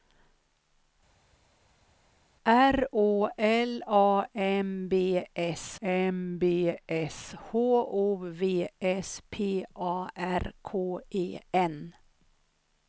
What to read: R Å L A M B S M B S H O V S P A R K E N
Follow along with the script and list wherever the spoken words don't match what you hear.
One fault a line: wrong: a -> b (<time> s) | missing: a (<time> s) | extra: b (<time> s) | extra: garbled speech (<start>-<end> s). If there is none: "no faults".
no faults